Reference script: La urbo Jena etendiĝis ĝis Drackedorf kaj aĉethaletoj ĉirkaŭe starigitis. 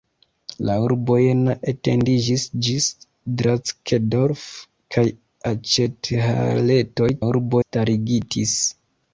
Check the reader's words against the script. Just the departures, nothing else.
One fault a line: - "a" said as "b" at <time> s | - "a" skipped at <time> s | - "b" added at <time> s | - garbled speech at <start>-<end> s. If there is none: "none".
- "ĉirkaŭe" said as "urbo" at 7.3 s